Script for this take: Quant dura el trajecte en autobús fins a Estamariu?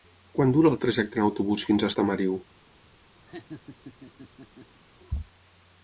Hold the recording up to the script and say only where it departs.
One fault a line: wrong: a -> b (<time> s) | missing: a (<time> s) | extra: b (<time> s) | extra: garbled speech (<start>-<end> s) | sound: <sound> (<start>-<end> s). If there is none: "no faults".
sound: laugh (3.3-4.8 s)